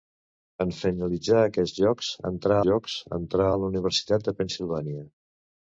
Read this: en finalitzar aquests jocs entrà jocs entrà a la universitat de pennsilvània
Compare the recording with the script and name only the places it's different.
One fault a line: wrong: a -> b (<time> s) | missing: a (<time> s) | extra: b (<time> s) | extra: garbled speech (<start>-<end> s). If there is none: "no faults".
no faults